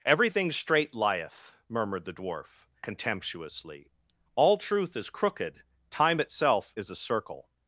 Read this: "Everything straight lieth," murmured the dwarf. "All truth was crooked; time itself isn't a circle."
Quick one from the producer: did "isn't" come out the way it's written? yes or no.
no